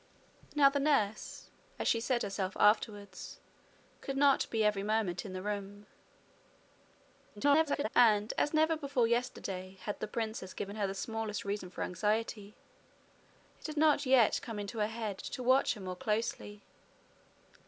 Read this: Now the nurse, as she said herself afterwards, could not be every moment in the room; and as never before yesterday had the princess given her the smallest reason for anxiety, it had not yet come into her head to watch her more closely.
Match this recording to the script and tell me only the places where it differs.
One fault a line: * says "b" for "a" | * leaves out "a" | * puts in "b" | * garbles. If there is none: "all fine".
* garbles